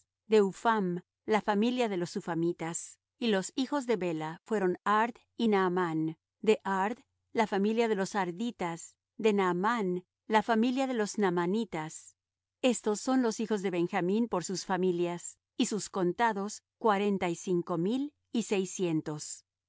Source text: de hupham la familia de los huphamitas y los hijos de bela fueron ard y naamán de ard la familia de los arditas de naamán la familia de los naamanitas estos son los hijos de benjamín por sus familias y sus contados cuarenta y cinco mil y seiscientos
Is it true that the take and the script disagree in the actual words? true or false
false